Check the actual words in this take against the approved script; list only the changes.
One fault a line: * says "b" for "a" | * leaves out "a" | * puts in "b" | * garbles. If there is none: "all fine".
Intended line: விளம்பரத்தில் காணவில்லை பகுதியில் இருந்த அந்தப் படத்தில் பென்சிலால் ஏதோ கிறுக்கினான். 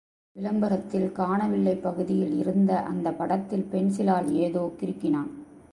all fine